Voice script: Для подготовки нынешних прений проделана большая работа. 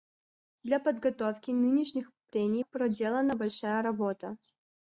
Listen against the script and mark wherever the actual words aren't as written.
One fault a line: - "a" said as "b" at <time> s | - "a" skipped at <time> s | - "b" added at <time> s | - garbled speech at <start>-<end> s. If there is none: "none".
none